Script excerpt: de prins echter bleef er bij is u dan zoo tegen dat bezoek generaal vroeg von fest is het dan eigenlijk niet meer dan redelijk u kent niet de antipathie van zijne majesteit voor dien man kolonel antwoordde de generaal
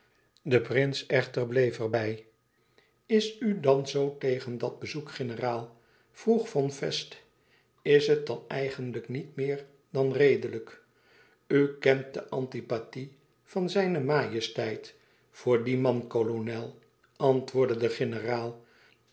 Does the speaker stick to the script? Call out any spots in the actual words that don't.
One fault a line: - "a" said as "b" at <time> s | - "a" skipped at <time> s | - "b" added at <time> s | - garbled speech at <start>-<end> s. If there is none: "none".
- "niet" skipped at 12.1 s